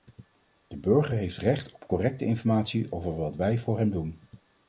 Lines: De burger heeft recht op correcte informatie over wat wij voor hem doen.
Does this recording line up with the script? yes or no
yes